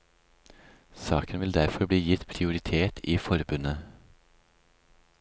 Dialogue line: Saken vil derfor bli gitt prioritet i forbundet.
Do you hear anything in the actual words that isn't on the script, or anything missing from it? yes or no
no